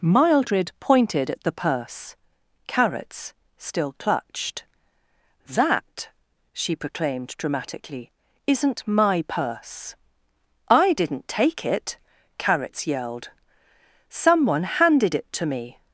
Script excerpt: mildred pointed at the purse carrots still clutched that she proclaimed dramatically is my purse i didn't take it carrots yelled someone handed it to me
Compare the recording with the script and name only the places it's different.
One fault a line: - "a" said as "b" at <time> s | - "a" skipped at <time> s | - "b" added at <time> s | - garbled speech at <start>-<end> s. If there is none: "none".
- "is" said as "isn't" at 8.5 s